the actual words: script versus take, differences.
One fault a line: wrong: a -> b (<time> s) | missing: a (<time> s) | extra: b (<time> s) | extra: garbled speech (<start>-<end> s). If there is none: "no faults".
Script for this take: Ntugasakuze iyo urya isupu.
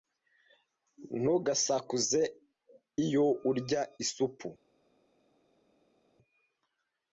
no faults